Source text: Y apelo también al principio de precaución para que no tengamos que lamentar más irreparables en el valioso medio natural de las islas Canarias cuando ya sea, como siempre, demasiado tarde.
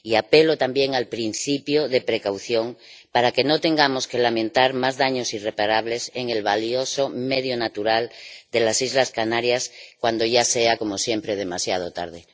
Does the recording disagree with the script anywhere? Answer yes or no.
yes